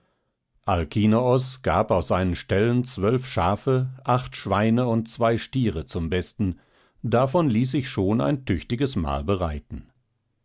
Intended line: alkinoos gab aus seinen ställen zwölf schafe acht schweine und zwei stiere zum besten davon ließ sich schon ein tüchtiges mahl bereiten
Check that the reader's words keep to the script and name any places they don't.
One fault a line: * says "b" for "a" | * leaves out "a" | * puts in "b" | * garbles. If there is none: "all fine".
all fine